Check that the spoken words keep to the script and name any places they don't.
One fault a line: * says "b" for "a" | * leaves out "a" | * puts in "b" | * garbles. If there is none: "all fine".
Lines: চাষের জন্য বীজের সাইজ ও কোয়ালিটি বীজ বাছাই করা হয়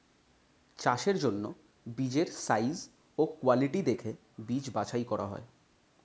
* puts in "দেখে"